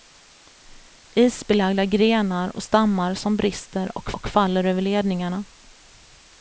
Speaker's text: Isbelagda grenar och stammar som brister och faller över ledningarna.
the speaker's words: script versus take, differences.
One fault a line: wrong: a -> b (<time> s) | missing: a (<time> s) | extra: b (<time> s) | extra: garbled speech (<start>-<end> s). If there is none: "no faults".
extra: och (4.1 s)